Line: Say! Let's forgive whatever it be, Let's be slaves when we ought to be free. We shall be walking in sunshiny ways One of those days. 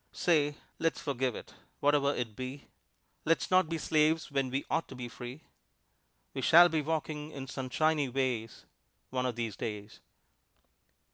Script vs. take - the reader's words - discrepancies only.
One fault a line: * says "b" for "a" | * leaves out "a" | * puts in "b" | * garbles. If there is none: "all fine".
* puts in "it"
* puts in "not"
* says "these" for "those"